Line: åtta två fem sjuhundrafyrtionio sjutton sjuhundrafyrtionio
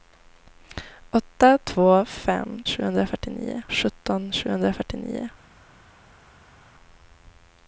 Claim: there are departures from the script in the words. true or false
false